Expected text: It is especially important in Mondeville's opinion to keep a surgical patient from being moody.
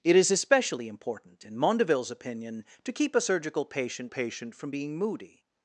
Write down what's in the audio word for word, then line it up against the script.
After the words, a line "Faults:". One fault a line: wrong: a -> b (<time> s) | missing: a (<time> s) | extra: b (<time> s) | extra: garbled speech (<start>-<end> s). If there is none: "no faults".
It is especially important in Mondeville's opinion to keep a surgical patient patient from being moody.
Faults:
extra: patient (4.1 s)